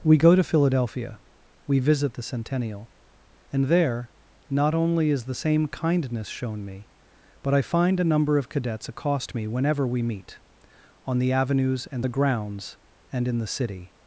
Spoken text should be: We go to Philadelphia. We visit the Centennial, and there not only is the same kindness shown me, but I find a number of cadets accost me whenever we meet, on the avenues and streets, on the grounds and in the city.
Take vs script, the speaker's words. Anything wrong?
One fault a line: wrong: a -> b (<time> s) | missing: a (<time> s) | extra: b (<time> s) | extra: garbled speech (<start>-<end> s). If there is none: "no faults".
missing: streets on (12.1 s)